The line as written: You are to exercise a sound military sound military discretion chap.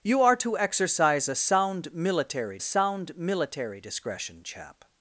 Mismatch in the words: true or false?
false